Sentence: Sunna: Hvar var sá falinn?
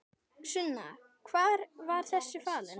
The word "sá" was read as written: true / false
false